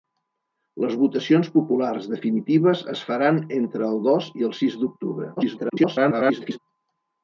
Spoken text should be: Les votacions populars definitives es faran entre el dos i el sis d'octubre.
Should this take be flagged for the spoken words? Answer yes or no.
yes